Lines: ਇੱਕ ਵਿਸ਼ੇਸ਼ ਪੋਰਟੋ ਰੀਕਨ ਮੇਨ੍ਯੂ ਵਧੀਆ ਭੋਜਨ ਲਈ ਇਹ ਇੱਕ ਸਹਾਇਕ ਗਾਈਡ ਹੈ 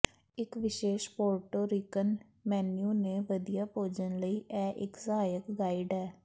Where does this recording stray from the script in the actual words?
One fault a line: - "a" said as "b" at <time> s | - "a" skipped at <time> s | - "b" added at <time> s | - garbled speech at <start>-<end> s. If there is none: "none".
- "ਤੇ" added at 3.0 s